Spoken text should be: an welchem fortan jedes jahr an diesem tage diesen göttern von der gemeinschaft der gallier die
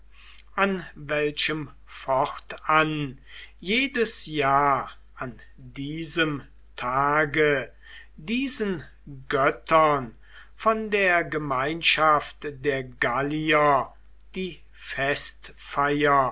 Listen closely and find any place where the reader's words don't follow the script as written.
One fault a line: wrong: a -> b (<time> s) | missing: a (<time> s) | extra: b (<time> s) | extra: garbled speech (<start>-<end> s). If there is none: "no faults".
no faults